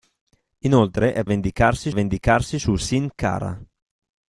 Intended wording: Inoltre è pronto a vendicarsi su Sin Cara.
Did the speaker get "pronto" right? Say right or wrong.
wrong